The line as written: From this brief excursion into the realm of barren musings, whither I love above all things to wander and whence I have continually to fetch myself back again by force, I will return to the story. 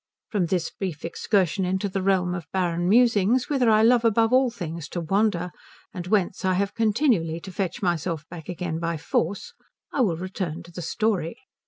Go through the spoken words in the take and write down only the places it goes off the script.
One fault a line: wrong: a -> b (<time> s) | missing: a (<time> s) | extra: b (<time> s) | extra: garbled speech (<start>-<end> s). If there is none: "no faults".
no faults